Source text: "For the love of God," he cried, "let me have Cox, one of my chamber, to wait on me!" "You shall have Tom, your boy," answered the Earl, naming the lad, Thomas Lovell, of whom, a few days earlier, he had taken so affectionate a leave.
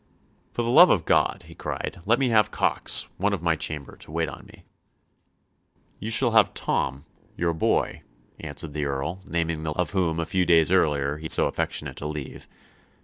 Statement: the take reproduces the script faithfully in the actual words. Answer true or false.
false